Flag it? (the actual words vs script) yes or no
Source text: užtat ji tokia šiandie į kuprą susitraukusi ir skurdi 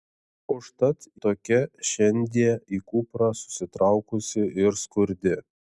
yes